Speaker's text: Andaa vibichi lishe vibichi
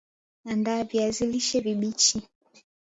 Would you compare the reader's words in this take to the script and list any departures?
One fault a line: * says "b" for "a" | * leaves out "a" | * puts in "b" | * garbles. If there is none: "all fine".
* says "viazi" for "vibichi"